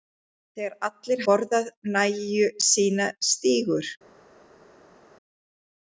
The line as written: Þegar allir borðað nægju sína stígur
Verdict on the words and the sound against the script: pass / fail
pass